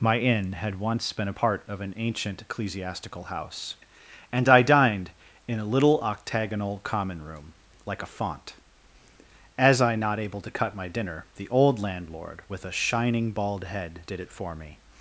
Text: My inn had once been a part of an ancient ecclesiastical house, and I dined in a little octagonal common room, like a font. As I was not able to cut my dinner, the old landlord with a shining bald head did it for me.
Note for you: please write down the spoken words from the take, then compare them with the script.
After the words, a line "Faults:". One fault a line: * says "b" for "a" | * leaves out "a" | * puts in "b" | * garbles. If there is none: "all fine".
My inn had once been a part of an ancient ecclesiastical house, and I dined in a little octagonal common room, like a font. As I not able to cut my dinner, the old landlord with a shining bald head did it for me.
Faults:
* leaves out "was"